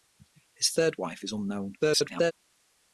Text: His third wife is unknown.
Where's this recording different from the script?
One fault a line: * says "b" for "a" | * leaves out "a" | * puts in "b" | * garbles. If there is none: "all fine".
* garbles